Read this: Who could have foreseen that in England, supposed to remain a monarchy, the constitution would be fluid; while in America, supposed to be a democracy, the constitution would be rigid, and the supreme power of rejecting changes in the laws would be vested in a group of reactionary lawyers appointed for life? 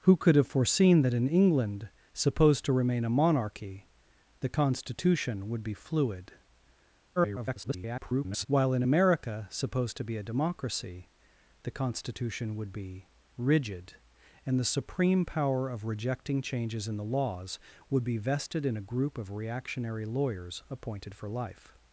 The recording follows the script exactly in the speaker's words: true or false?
false